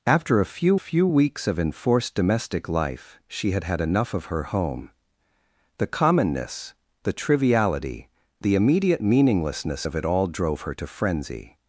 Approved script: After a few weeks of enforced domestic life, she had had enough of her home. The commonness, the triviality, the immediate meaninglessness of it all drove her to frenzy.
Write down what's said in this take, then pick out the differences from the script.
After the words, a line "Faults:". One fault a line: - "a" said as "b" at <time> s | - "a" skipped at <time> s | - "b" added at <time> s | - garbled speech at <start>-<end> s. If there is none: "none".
After a few few weeks of enforced domestic life, she had had enough of her home. The commonness, the triviality, the immediate meaninglessness of it all drove her to frenzy.
Faults:
- "few" added at 0.7 s